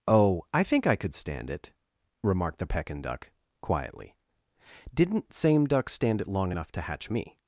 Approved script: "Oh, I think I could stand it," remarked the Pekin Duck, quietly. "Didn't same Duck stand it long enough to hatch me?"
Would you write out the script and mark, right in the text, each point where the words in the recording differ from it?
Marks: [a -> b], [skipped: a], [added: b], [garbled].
"Oh, I think I could stand it," remarked the Pekin Duck, quietly. "Didn't same Duck stand it long enough to hatch me?"